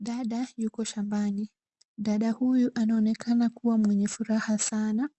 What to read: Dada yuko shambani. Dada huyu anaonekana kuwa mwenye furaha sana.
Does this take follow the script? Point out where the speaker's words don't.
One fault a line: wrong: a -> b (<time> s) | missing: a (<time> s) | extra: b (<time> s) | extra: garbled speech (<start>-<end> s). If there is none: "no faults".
no faults